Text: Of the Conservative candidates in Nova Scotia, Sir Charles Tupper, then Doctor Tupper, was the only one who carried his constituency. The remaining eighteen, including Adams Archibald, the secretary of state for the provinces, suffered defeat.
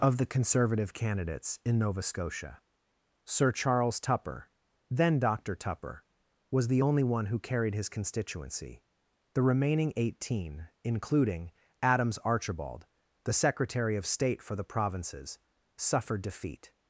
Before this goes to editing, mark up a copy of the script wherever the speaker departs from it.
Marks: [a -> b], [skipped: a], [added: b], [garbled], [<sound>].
Of the Conservative candidates in Nova Scotia, Sir Charles Tupper, then Doctor Tupper, was the only one who carried his constituency. The remaining eighteen, including Adams Archibald, the secretary of state for the provinces, suffered defeat.